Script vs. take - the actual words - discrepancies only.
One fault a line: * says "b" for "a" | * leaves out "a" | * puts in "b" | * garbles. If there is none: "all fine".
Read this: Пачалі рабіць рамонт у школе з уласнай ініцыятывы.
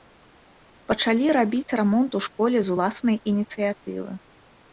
all fine